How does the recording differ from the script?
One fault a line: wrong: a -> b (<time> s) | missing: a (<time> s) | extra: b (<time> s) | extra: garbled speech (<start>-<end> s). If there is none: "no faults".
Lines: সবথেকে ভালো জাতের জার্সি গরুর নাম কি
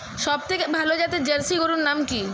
no faults